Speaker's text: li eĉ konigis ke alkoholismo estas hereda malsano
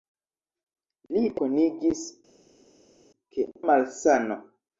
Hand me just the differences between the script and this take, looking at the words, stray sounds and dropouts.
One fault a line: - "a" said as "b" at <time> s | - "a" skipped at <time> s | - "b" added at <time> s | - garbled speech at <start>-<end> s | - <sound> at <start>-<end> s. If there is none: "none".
- "eĉ" skipped at 1.2 s
- "alkoholismo estas hereda" skipped at 3.5 s